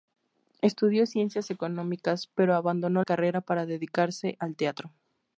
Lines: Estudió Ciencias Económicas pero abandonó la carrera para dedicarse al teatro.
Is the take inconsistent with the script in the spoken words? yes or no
yes